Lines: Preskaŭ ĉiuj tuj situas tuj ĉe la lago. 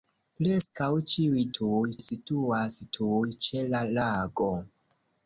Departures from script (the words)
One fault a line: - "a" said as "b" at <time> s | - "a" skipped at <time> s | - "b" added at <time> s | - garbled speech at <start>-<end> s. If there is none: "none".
none